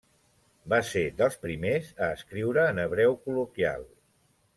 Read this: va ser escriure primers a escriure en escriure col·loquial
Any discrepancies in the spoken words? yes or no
yes